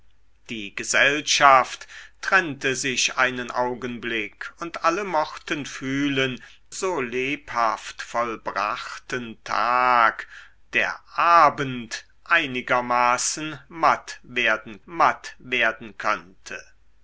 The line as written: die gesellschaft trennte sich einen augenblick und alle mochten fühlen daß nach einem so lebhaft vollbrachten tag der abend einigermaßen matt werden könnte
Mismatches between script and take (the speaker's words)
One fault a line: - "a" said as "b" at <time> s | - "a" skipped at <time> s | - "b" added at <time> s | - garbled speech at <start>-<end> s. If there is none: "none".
- "daß nach einem" skipped at 6.4 s
- "matt werden" added at 14.8 s